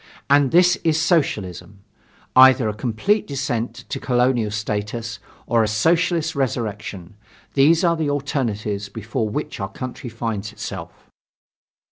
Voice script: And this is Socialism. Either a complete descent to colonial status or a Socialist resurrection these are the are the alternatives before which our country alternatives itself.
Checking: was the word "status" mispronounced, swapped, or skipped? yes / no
no